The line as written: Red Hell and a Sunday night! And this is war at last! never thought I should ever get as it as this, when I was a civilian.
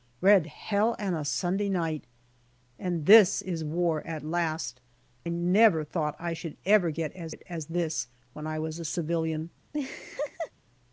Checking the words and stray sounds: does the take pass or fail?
fail